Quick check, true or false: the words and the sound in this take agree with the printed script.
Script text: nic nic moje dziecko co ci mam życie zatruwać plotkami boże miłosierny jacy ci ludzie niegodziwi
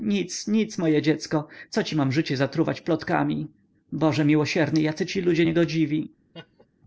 false